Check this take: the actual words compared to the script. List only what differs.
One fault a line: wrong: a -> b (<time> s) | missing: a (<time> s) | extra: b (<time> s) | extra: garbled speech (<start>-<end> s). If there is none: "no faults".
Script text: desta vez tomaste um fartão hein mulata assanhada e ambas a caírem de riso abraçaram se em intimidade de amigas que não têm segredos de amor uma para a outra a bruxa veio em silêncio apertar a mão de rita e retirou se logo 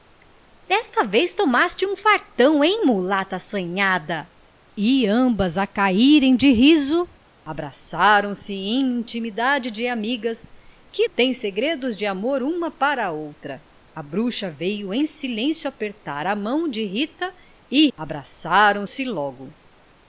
missing: não (11.1 s)
wrong: retirou -> abraçaram (18.0 s)